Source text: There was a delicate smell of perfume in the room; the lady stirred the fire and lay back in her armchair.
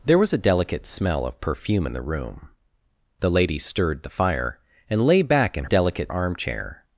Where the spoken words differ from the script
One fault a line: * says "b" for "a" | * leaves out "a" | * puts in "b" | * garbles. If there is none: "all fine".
* says "delicate" for "her"